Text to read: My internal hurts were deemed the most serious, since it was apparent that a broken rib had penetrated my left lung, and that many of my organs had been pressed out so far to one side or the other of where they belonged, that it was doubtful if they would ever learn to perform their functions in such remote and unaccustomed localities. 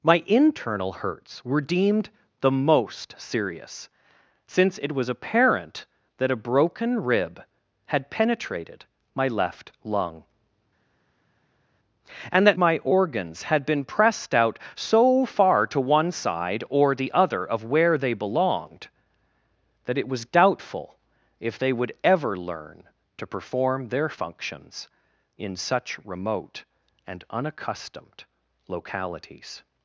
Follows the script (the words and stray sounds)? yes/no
no